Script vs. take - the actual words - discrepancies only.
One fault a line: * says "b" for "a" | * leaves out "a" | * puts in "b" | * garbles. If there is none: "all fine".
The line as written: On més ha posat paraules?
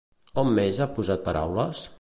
all fine